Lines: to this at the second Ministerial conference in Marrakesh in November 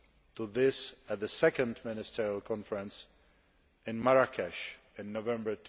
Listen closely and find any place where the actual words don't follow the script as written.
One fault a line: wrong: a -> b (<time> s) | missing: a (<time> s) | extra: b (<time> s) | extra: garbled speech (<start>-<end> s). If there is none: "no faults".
no faults